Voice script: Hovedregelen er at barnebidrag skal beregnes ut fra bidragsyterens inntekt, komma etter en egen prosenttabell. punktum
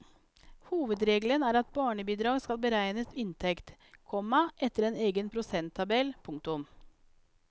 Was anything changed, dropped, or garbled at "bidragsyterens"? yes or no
yes